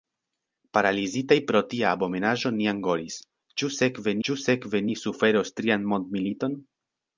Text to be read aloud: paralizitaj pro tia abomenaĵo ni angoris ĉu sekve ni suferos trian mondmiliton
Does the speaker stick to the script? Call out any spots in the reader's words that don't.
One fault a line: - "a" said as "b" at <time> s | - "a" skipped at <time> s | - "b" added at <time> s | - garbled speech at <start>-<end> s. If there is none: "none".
- "ĉu sekve" added at 4.3 s